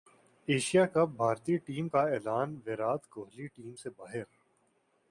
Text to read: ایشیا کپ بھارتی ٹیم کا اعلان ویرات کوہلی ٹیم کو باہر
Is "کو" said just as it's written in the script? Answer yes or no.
no